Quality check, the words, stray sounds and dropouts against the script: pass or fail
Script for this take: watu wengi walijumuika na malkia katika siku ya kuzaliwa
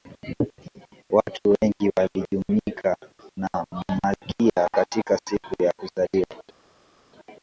pass